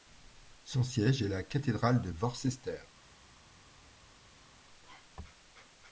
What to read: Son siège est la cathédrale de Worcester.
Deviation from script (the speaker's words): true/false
false